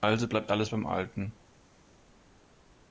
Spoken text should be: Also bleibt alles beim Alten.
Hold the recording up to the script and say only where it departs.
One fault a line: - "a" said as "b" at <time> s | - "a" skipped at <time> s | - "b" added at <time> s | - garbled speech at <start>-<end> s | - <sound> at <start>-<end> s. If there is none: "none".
none